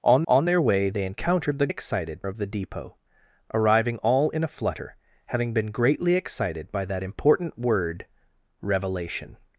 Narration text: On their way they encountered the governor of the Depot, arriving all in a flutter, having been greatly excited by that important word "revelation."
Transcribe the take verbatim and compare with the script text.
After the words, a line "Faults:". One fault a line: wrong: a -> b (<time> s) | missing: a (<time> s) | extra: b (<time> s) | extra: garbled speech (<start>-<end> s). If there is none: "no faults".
On on their way they encountered the excited of the Depot, arriving all in a flutter, having been greatly excited by that important word "revelation."
Faults:
extra: on (0.3 s)
wrong: governor -> excited (1.7 s)